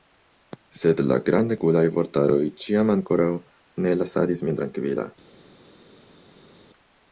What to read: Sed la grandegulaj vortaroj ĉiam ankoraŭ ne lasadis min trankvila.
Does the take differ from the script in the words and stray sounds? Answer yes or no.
no